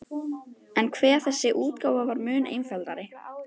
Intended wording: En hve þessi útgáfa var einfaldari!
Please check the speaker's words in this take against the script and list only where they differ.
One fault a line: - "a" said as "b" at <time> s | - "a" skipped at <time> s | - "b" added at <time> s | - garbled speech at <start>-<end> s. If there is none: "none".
- "mun" added at 2.3 s